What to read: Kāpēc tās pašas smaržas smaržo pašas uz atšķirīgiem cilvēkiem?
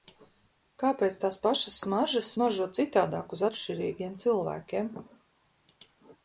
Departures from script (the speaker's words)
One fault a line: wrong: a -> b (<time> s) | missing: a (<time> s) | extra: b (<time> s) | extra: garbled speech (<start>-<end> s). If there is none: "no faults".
wrong: pašas -> citādāk (2.8 s)